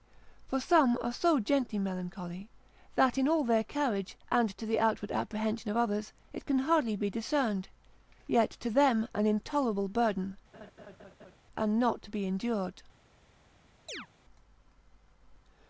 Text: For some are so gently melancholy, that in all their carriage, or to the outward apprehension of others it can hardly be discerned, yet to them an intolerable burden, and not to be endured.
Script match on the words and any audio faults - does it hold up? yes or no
no